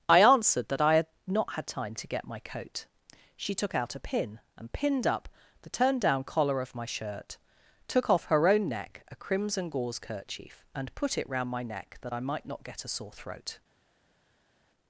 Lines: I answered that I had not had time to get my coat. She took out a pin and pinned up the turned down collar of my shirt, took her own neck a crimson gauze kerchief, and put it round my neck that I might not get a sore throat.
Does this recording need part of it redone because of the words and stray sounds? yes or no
yes